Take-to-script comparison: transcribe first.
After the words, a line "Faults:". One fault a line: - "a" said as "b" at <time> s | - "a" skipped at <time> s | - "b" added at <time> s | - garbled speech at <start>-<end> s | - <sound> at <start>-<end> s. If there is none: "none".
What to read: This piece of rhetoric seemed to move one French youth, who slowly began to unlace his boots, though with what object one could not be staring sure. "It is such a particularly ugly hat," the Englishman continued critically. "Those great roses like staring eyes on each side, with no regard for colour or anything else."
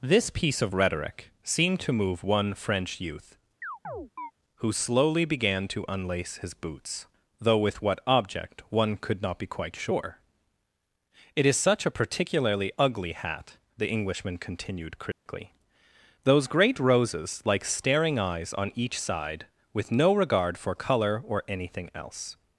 This piece of rhetoric seemed to move one French youth, who slowly began to unlace his boots, though with what object one could not be quite sure. "It is such a particularly ugly hat," the Englishman continued critically. "Those great roses like staring eyes on each side, with no regard for colour or anything else."
Faults:
- chirp at 3.6-4.3 s
- "staring" said as "quite" at 9.5 s
- dropout at 15.1-15.3 s